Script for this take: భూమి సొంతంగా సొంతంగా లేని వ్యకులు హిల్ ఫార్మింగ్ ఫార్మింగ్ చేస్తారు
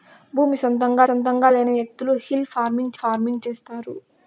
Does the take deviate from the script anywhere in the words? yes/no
no